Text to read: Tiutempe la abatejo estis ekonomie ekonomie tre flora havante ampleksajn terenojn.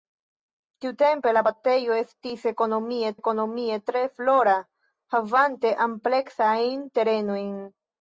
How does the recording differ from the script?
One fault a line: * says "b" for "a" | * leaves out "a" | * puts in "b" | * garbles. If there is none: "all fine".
all fine